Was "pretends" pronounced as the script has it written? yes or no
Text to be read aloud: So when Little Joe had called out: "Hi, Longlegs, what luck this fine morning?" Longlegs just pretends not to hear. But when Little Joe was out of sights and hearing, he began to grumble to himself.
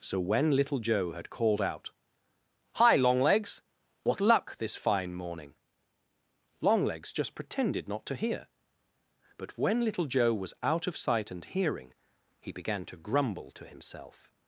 no